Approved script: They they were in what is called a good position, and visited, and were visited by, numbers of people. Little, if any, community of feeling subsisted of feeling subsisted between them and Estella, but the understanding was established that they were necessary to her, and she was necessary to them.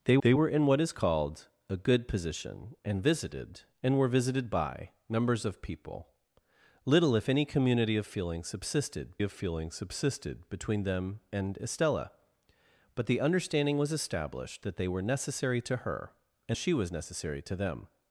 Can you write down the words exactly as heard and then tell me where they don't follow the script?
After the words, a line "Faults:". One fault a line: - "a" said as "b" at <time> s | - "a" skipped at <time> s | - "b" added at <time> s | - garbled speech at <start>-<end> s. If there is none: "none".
They they were in what is called a good position, and visited, and were visited by, numbers of people. Little, if any, community of feeling subsisted of feeling subsisted between them and Estella, but the understanding was established that they were necessary to her, and she was necessary to them.
Faults:
none